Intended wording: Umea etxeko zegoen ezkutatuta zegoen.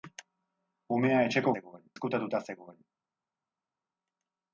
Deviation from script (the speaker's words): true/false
false